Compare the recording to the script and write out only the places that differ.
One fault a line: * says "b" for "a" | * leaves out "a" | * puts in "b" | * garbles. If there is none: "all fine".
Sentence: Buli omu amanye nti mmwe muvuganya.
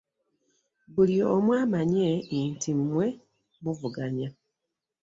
all fine